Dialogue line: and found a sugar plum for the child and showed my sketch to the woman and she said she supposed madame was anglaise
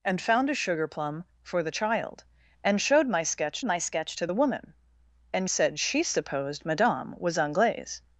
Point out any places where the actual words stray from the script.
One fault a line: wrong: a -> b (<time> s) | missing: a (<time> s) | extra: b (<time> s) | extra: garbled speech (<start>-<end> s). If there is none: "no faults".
extra: my sketch (3.6 s)
missing: she (5.5 s)